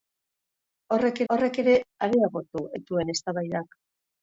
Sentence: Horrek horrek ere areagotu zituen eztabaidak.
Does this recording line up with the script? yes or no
yes